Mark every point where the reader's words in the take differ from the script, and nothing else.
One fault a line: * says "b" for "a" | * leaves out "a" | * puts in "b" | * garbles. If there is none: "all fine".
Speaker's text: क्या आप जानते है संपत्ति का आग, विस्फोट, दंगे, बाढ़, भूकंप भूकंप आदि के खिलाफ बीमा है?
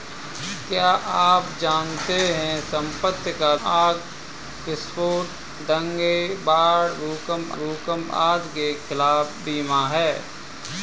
all fine